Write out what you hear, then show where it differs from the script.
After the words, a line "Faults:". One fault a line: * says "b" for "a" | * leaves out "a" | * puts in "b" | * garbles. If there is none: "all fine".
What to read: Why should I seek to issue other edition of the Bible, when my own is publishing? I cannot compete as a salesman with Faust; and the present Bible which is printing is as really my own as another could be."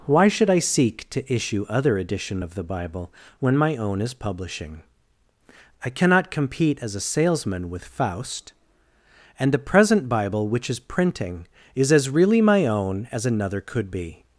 Why should I seek to issue other edition of the Bible, when my own is publishing? I cannot compete as a salesman with Faust; and the present Bible which is printing is as really my own as another could be."
Faults:
all fine